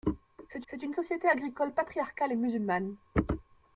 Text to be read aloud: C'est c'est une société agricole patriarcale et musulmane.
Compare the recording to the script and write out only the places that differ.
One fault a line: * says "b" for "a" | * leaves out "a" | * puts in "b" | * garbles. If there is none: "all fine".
all fine